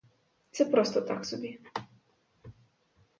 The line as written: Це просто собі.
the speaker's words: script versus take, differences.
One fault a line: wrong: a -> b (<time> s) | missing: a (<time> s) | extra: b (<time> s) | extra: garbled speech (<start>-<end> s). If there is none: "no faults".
extra: так (1.0 s)